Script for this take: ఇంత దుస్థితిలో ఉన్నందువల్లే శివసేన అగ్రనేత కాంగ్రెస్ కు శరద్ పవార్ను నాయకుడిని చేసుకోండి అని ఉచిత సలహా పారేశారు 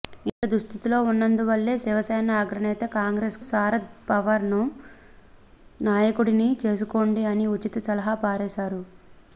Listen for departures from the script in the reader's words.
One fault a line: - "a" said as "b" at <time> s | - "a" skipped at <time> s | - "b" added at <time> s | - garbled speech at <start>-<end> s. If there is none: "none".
- "కు" skipped at 3.4 s